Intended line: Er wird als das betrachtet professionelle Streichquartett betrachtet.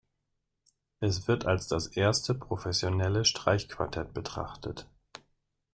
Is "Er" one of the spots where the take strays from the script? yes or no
yes